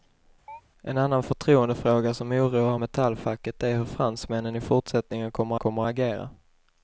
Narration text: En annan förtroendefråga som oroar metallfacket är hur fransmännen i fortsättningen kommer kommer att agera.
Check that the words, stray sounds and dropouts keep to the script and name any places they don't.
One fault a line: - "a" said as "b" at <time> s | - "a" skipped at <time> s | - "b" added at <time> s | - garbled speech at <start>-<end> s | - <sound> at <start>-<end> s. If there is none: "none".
- chirp at 0.5-0.6 s